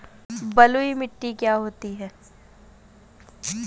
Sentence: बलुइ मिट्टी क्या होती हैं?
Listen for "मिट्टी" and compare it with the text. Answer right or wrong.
right